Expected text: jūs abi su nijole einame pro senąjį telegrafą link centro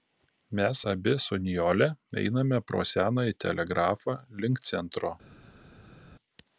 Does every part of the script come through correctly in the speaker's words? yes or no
no